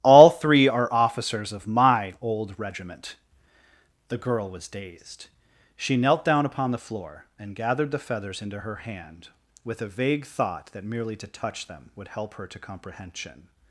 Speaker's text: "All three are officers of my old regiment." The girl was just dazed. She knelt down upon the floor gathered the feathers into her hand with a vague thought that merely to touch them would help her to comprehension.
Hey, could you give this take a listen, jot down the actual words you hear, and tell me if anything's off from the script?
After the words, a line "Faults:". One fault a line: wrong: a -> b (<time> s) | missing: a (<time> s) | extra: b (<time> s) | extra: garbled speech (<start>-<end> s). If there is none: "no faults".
"All three are officers of my old regiment." The girl was dazed. She knelt down upon the floor and gathered the feathers into her hand with a vague thought that merely to touch them would help her to comprehension.
Faults:
missing: just (4.7 s)
extra: and (7.4 s)